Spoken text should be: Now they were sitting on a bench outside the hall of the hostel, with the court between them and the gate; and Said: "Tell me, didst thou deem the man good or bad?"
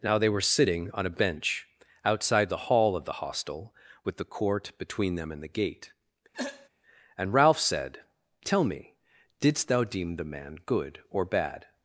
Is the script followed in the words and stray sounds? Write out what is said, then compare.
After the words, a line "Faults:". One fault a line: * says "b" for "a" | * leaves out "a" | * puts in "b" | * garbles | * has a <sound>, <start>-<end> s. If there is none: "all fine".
Now they were sitting on a bench outside the hall of the hostel, with the court between them and the gate; and Ralph said: "Tell me, didst thou deem the man good or bad?"
Faults:
* has a throat clearing, 6.3-6.7 s
* puts in "Ralph"